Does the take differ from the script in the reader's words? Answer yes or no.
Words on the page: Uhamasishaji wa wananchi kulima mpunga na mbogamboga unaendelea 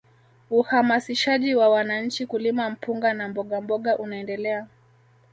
no